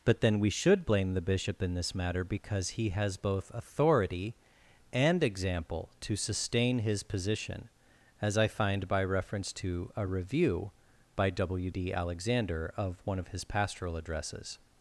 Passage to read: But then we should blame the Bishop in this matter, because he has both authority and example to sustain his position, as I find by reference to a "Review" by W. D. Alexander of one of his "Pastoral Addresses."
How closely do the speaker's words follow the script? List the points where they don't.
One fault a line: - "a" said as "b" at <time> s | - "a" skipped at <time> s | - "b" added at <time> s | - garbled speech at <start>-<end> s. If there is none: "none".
none